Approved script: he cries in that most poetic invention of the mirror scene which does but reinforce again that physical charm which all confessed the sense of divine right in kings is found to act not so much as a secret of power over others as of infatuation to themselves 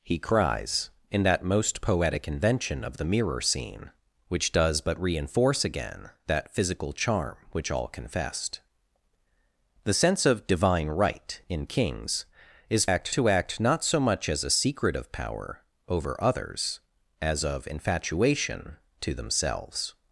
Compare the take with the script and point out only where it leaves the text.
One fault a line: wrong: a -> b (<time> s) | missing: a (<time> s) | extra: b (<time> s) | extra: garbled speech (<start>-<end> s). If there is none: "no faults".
wrong: found -> act (12.9 s)